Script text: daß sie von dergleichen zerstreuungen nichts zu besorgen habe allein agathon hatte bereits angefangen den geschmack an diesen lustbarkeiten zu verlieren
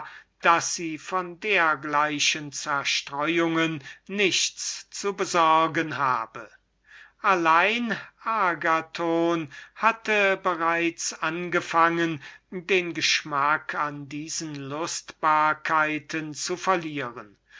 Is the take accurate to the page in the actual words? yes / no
yes